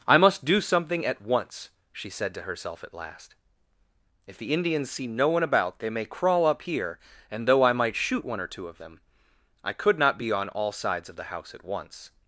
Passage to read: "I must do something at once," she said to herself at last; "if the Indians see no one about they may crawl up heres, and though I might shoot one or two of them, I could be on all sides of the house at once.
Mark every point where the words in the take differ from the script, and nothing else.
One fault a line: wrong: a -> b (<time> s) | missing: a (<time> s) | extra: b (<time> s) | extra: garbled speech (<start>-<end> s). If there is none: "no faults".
wrong: heres -> here (6.6 s)
extra: not (10.0 s)